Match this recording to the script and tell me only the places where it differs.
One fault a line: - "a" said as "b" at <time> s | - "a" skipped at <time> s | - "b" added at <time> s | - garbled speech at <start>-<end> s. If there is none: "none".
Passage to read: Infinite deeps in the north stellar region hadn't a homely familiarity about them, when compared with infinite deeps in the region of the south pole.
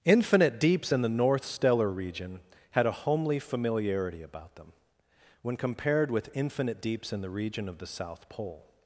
- "hadn't" said as "had" at 2.7 s